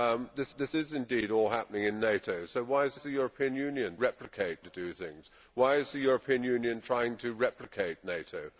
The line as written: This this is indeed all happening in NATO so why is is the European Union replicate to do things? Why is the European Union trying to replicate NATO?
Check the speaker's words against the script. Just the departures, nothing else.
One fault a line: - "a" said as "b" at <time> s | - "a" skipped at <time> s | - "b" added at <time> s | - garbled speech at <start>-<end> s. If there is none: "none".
none